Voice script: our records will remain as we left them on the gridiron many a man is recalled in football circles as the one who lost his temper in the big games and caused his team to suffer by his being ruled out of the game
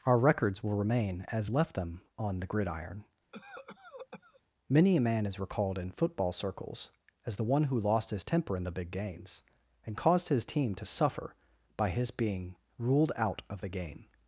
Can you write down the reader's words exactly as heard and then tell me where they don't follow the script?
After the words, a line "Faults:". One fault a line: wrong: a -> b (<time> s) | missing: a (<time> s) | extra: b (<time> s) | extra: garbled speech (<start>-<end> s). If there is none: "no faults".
our records will remain as left them on the gridiron many a man is recalled in football circles as the one who lost his temper in the big games and caused his team to suffer by his being ruled out of the game
Faults:
missing: we (1.5 s)